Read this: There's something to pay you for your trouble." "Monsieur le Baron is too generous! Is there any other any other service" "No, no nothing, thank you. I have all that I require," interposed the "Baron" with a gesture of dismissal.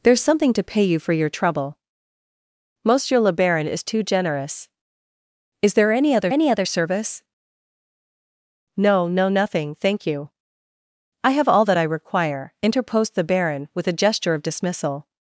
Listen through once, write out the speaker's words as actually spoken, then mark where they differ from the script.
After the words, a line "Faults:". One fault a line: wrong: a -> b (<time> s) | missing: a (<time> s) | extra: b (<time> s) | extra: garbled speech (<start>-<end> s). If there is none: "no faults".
There's something to pay you for your trouble." "Monsieur le Baron is too generous! Is there any other any other service" "No, no nothing, thank you. I have all that I require," interposed the "Baron" with a gesture of dismissal.
Faults:
no faults